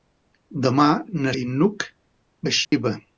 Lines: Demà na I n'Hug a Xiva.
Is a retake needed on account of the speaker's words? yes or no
no